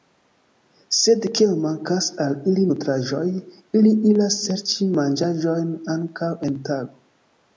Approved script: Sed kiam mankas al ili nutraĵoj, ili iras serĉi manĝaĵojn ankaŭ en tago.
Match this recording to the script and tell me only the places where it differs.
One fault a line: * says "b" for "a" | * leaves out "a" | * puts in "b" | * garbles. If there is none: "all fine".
all fine